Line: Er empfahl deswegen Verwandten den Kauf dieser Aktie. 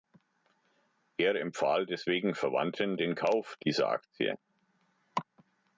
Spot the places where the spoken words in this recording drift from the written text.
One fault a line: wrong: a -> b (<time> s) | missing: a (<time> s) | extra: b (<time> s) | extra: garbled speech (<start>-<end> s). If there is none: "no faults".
no faults